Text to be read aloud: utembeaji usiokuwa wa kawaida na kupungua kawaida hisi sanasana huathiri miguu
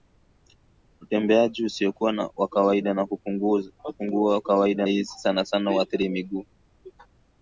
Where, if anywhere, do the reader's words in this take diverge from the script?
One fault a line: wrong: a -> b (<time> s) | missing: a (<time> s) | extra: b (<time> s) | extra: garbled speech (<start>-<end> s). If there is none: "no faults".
no faults